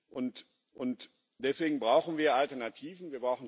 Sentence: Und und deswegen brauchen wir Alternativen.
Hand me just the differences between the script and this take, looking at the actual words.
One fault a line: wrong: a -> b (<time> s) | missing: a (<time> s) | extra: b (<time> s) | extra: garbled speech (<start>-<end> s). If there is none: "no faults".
no faults